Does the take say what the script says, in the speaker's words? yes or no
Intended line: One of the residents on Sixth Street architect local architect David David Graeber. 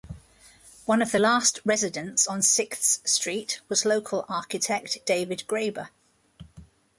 no